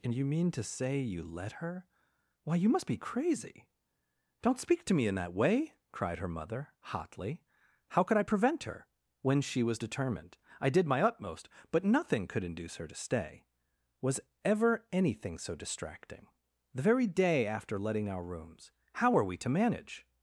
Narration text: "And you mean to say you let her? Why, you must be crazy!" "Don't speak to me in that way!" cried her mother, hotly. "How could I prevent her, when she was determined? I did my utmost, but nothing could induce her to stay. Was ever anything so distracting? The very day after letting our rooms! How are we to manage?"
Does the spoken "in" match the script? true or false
true